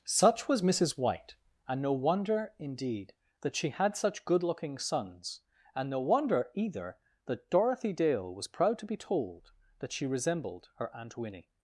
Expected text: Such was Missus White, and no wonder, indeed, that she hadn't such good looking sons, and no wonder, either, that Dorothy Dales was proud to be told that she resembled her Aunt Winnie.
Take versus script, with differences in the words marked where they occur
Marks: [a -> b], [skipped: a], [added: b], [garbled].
Such was Missus White, and no wonder, indeed, that she [hadn't -> had] such good looking sons, and no wonder, either, that Dorothy [Dales -> Dale] was proud to be told that she resembled her Aunt Winnie.